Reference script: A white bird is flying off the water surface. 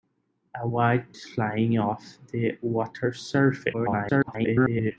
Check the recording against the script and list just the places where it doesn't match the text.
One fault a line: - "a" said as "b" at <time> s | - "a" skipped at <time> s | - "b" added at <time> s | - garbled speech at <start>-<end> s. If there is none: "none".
- "bird" skipped at 1.2 s
- garbled speech at 3.7-4.9 s